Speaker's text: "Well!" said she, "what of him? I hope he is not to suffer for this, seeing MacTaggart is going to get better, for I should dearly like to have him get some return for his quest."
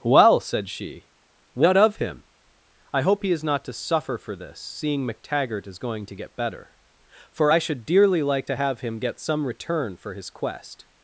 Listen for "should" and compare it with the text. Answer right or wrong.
right